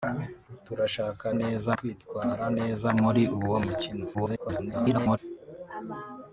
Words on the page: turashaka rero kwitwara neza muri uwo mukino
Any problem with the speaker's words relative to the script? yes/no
yes